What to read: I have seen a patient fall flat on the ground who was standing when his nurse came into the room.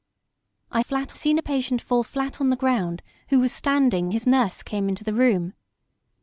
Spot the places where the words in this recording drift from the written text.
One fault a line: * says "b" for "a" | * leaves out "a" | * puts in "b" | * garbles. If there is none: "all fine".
* says "flat" for "have"
* leaves out "when"